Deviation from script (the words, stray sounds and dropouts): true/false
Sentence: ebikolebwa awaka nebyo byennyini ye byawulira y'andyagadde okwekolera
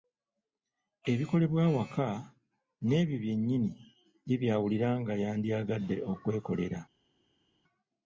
true